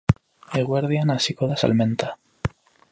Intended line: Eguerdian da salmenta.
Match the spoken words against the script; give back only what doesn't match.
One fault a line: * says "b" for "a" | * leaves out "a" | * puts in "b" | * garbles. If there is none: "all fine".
* puts in "hasiko"